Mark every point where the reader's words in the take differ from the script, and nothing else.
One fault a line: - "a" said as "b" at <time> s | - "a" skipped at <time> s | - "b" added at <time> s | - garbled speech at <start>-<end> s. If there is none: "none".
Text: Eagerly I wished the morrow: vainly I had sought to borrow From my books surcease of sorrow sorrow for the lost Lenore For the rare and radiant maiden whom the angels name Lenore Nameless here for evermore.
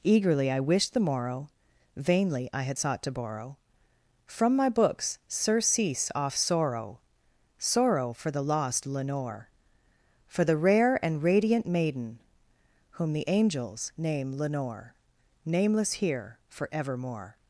- "of" said as "off" at 6.1 s